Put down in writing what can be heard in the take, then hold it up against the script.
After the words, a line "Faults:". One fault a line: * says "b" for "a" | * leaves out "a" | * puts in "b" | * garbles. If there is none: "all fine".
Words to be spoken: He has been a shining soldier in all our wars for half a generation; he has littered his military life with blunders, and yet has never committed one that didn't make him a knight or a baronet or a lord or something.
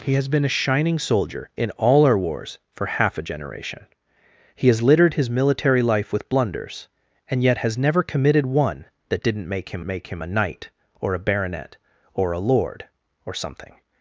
He has been a shining soldier in all our wars for half a generation; he has littered his military life with blunders, and yet has never committed one that didn't make him make him a knight or a baronet or a lord or something.
Faults:
* puts in "make him"